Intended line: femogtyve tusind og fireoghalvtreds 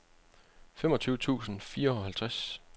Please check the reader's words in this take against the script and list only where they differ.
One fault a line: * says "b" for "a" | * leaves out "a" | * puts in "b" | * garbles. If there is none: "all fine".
all fine